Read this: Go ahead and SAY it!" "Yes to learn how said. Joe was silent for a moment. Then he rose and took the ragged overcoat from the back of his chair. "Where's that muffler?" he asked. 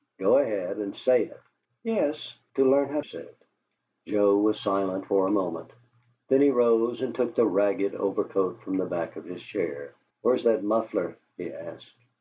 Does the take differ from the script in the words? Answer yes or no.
no